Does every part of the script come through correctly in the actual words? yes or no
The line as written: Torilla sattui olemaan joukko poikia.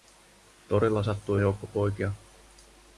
no